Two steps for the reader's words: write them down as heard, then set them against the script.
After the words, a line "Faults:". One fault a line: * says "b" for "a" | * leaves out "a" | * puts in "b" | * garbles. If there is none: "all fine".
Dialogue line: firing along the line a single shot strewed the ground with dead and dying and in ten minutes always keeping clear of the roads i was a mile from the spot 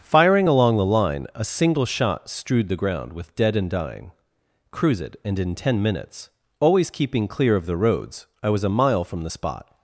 firing along the line a single shot strewed the ground with dead and dying cruise it and in ten minutes always keeping clear of the roads i was a mile from the spot
Faults:
* puts in "cruise it"